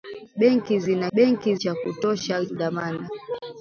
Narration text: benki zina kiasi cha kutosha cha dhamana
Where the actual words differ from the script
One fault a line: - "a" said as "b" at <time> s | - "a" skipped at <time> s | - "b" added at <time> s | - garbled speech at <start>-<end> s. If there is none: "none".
- "kiasi" said as "benki" at 1.1 s
- "cha" skipped at 2.5 s